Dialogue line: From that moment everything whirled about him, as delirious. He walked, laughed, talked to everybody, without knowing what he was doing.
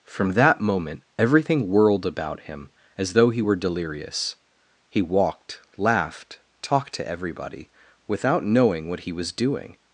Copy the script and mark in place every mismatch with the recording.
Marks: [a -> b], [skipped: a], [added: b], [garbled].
From that moment everything whirled about him, as [added: though he were] delirious. He walked, laughed, talked to everybody, without knowing what he was doing.